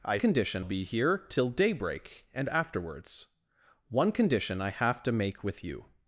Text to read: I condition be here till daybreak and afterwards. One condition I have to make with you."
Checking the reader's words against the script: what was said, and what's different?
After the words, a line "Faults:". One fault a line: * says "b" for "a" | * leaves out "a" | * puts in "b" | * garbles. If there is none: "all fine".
I condition be here till daybreak and afterwards. One condition I have to make with you."
Faults:
all fine